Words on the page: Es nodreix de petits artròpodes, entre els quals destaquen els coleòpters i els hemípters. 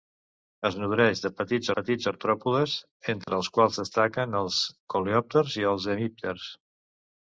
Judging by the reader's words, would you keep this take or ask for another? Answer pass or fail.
fail